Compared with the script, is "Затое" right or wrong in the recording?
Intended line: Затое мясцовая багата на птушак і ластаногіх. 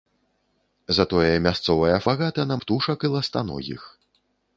right